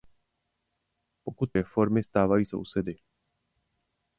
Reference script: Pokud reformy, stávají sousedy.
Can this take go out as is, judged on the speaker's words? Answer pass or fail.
pass